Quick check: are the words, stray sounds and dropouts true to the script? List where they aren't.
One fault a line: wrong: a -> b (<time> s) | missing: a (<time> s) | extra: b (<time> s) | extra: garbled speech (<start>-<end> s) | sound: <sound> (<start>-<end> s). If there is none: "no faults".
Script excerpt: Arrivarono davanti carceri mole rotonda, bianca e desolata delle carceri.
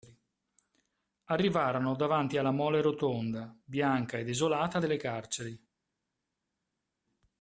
wrong: carceri -> alla (2.4 s)